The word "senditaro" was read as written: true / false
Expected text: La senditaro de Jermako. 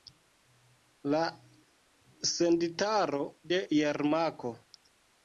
true